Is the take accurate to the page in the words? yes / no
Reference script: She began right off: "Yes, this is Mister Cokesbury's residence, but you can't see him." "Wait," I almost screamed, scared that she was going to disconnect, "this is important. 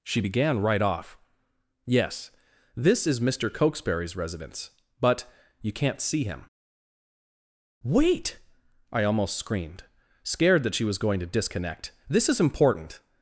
yes